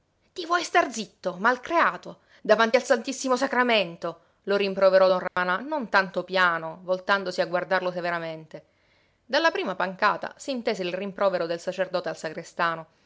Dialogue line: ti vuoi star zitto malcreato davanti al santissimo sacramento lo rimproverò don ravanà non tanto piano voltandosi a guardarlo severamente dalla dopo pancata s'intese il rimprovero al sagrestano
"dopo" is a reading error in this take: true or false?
true